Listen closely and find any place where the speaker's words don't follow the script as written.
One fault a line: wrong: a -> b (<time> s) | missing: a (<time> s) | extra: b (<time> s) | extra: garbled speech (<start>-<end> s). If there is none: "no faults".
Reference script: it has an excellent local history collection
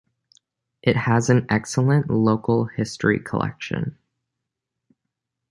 no faults